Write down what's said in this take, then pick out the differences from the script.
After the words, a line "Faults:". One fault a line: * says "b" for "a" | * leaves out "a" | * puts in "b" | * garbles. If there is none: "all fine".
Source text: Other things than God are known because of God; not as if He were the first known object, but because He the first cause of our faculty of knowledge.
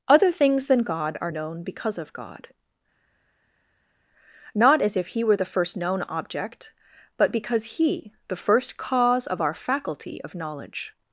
Other things than God are known because of God; not as if He were the first known object, but because He the first cause of our faculty of knowledge.
Faults:
all fine